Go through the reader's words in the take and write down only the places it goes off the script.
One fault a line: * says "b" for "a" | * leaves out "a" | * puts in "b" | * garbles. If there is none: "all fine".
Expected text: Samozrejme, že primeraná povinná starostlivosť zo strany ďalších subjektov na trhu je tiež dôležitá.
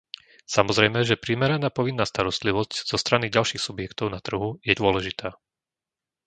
* leaves out "tiež"